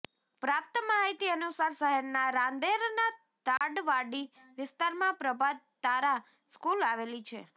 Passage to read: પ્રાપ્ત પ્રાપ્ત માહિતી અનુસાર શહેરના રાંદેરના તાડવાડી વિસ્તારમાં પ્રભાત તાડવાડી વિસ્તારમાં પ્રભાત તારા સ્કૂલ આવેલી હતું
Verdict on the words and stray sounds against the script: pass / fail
fail